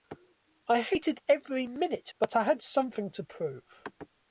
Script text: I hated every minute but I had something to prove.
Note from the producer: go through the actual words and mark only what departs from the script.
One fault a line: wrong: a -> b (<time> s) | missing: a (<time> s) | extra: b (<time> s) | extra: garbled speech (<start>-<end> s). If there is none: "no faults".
no faults